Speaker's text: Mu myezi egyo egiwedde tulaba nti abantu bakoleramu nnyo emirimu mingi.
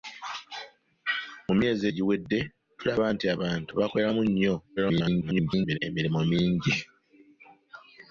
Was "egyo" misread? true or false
true